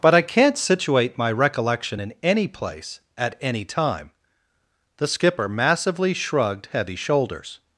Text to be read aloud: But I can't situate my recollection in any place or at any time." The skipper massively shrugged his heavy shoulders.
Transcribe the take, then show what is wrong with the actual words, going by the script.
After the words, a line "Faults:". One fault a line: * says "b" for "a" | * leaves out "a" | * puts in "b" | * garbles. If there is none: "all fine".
But I can't situate my recollection in any place at any time." The skipper massively shrugged heavy shoulders.
Faults:
* leaves out "or"
* leaves out "his"